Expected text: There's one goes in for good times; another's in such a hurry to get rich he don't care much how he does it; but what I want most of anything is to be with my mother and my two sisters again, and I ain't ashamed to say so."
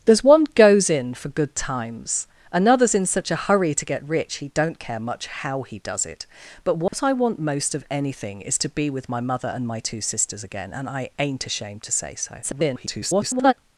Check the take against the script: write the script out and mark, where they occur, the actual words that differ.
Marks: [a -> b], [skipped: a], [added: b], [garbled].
There's one goes in for good times; another's in such a hurry to get rich he don't care much how he does it; but what I want most of anything is to be with my mother and my two sisters again, and I ain't ashamed to say so." [garbled]